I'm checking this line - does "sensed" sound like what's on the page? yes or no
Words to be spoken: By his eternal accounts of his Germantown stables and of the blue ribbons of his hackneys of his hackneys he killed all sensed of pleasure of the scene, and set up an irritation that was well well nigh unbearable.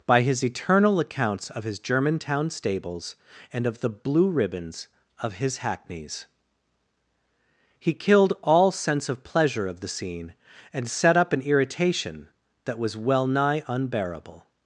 no